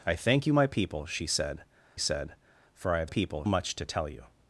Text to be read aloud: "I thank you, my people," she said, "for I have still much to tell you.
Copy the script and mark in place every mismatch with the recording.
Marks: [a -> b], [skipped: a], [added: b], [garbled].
"I thank you, my people," she said, [added: said] "for I have [still -> people] much to tell you.